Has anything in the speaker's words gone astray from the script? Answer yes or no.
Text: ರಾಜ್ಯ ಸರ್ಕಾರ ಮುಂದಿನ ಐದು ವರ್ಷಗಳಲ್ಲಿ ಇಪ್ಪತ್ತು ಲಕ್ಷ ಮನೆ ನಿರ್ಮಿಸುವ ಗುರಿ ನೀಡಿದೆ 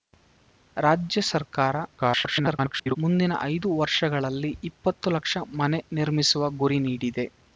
yes